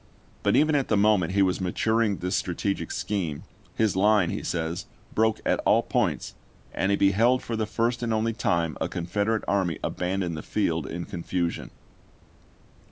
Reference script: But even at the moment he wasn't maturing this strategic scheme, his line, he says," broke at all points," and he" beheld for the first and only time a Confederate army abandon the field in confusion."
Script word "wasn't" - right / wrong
wrong